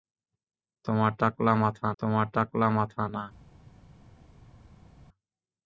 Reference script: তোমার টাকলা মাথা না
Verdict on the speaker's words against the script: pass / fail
fail